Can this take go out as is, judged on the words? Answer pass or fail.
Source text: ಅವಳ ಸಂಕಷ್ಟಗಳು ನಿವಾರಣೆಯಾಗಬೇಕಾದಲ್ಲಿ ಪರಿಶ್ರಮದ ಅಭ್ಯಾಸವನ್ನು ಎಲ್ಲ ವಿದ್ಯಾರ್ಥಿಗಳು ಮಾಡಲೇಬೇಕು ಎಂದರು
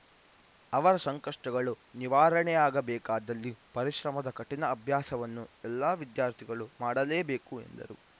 fail